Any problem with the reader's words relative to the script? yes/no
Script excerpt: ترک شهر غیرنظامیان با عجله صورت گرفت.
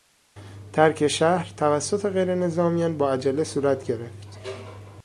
yes